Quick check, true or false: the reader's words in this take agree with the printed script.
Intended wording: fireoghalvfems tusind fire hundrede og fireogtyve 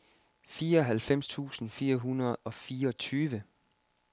true